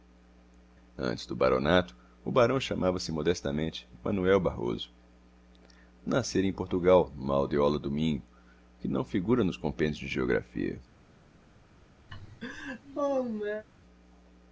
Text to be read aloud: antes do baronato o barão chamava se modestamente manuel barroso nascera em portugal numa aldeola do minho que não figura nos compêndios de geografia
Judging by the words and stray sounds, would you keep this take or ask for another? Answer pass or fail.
fail